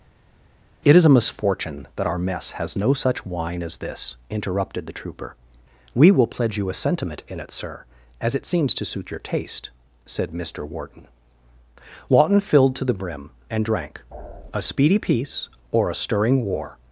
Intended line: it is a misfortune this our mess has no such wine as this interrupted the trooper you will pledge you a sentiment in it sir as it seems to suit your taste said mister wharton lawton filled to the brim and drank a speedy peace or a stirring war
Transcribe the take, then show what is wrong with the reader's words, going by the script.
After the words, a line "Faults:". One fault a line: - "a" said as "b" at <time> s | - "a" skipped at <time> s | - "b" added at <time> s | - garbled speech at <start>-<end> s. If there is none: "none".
it is a misfortune that our mess has no such wine as this interrupted the trooper we will pledge you a sentiment in it sir as it seems to suit your taste said mister wharton lawton filled to the brim and drank a speedy peace or a stirring war
Faults:
- "this" said as "that" at 2.0 s
- "you" said as "we" at 5.9 s